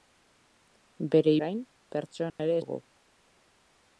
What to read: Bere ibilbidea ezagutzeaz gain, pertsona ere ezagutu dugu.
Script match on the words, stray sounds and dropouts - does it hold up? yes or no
no